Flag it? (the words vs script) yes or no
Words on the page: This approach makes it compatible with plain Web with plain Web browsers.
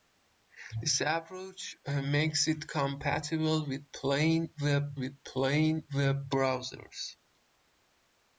no